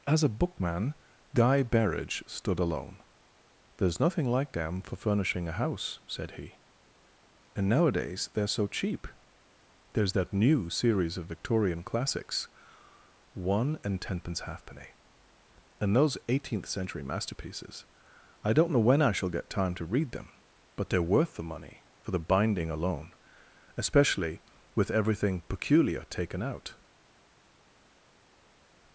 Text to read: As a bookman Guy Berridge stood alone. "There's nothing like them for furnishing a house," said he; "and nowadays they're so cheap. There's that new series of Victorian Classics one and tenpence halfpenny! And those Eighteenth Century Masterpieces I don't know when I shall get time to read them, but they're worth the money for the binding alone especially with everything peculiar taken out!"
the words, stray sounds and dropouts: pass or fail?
pass